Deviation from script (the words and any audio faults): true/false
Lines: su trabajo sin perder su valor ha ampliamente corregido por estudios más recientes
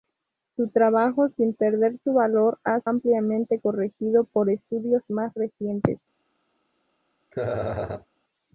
true